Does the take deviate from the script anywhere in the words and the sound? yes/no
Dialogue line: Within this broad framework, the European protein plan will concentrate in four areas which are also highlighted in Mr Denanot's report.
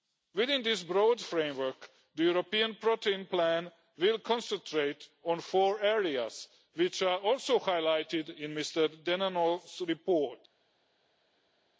yes